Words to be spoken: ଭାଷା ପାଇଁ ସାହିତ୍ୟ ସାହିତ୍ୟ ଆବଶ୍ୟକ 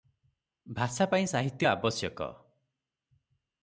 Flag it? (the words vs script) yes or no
yes